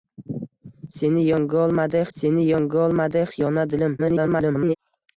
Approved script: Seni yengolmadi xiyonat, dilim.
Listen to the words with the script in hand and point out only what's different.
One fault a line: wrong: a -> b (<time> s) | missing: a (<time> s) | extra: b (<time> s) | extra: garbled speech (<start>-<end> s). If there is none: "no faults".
extra: seni yengolmadi (2.2 s)
extra: garbled speech (4.0-4.8 s)